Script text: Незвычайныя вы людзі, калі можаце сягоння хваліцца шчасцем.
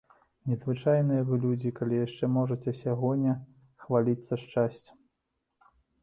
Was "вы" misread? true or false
false